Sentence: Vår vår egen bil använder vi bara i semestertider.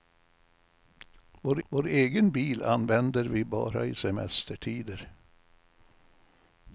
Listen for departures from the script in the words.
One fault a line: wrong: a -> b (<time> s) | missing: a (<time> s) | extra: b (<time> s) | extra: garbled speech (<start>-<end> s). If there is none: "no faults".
no faults